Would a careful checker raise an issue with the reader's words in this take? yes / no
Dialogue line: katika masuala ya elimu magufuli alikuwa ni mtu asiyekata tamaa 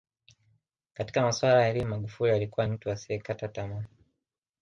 yes